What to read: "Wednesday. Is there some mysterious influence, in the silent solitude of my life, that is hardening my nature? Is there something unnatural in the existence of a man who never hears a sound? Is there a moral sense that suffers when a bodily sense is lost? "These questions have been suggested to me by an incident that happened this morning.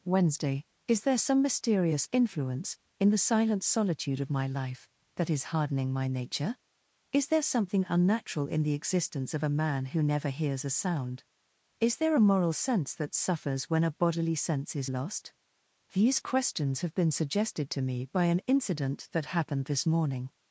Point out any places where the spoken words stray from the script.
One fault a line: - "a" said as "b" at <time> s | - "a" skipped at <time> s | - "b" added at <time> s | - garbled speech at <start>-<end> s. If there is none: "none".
none